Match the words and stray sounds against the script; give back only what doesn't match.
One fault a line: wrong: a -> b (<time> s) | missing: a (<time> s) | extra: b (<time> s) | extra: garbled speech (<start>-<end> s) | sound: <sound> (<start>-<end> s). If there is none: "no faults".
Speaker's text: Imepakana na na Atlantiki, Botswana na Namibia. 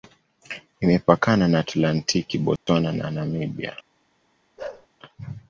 missing: na (1.6 s)
sound: dropout (2.6-2.7 s)
sound: bark (4.6-4.9 s)